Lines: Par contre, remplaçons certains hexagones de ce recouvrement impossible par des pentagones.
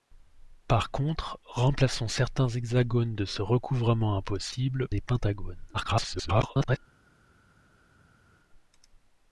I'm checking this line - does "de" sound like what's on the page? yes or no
yes